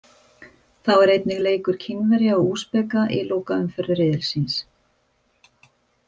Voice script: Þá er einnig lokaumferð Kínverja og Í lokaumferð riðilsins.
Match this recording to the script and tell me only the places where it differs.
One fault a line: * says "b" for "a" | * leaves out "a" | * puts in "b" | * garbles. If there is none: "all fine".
* says "leikur" for "lokaumferð"
* puts in "Úsbeka"